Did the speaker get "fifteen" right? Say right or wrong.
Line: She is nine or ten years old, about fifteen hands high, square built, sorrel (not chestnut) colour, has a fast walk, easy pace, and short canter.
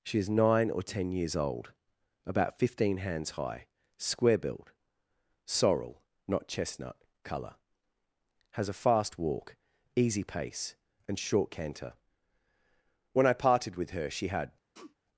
right